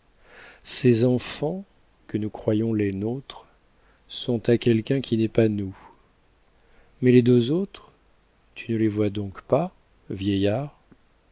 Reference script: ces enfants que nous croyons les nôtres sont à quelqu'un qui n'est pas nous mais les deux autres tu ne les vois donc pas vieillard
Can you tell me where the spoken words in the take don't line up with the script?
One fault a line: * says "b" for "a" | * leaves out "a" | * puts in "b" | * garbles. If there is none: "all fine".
all fine